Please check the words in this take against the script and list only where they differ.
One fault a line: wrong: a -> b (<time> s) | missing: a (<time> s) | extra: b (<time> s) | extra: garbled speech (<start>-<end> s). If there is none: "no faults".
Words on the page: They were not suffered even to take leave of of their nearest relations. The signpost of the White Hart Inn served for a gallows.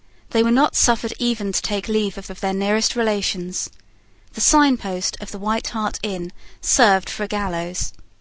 no faults